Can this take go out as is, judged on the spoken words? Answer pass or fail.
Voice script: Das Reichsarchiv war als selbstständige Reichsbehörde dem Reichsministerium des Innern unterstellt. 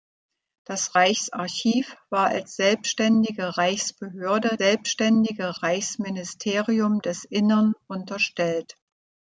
fail